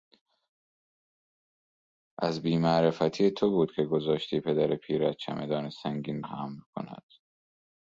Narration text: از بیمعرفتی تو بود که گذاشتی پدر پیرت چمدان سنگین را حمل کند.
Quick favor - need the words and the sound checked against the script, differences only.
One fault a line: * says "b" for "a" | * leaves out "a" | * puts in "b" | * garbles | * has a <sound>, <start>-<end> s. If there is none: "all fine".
* leaves out "را"